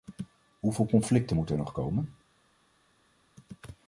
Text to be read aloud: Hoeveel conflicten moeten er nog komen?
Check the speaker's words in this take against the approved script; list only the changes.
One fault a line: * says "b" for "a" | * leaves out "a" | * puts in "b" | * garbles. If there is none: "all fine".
all fine